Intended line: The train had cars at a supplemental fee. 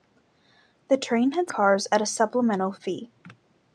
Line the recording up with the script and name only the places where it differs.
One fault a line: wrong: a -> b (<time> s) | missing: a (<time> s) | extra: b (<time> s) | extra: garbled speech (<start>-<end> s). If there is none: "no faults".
no faults